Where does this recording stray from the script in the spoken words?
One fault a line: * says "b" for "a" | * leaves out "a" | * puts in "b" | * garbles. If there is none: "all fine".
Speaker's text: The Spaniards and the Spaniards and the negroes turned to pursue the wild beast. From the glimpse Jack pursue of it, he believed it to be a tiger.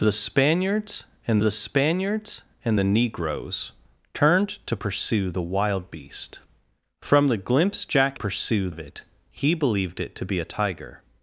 all fine